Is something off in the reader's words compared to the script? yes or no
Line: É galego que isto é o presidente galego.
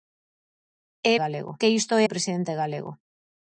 no